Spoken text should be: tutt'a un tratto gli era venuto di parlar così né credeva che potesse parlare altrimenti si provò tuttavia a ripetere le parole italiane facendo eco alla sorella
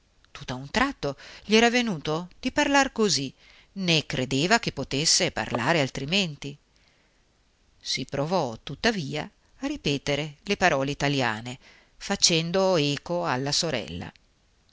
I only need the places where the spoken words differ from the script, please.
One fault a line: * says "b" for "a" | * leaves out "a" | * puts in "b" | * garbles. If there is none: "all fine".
all fine